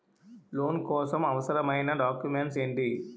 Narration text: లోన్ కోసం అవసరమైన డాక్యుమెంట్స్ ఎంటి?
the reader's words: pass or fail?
pass